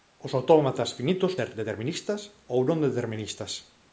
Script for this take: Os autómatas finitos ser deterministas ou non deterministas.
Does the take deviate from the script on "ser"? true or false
false